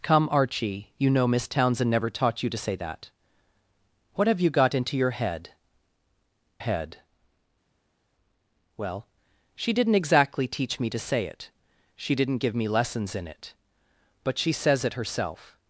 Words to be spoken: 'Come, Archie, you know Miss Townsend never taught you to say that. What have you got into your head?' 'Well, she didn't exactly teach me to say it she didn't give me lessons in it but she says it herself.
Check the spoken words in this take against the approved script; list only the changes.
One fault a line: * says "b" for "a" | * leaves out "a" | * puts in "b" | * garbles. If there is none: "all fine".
* puts in "head"